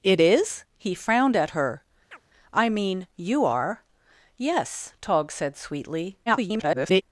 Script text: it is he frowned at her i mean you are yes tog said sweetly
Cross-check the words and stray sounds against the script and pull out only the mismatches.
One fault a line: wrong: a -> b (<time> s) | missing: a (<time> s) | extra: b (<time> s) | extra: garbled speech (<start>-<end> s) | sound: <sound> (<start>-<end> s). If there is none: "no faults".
sound: chirp (2.1-2.2 s)
extra: garbled speech (6.3-7.0 s)